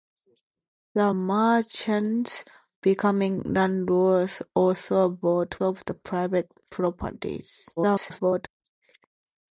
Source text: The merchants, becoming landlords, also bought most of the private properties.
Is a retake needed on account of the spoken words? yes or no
yes